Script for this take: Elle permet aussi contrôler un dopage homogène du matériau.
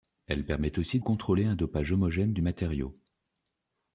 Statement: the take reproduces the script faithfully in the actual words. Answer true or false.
true